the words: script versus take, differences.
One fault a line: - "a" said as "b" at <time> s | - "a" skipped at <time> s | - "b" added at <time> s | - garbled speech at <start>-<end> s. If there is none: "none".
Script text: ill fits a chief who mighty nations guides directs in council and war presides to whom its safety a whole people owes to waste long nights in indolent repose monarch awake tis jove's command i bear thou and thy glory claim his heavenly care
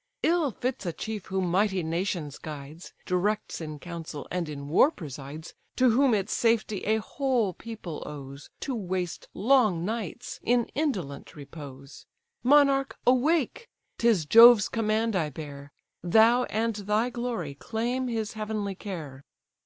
- "in" added at 4.5 s